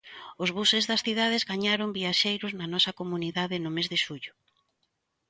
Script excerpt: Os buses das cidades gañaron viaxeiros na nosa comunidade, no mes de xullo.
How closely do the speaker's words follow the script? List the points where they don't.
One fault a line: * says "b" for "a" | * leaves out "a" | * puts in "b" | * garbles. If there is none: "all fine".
all fine